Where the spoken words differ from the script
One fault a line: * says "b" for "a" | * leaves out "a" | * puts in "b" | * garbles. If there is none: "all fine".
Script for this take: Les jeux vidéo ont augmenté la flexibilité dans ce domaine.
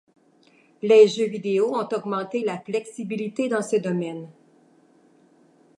all fine